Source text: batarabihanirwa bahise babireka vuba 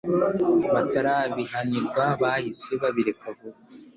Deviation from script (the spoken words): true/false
false